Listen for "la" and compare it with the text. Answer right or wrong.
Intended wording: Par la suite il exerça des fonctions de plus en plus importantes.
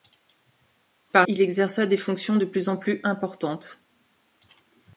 wrong